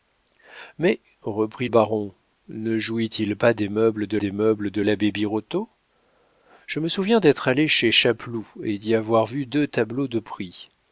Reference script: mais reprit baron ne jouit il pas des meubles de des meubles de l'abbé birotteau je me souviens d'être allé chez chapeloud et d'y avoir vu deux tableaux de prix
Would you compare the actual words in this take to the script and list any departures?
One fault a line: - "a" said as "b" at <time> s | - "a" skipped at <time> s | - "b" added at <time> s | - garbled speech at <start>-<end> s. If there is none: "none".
none